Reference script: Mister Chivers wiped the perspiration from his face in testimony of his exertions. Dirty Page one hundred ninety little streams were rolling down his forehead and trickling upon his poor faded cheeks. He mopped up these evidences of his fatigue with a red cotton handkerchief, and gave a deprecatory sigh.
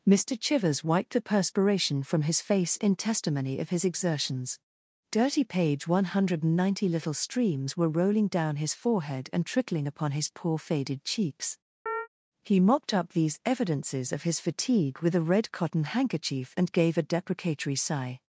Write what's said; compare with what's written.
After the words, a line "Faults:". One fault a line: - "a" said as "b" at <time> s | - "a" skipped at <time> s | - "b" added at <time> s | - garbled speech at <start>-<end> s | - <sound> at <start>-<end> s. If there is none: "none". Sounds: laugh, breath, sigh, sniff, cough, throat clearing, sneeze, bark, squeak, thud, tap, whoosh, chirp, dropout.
Mister Chivers wiped the perspiration from his face in testimony of his exertions. Dirty Page one hundred ninety little streams were rolling down his forehead and trickling upon his poor faded cheeks. He mopped up these evidences of his fatigue with a red cotton handkerchief, and gave a deprecatory sigh.
Faults:
- chirp at 11.9-12.1 s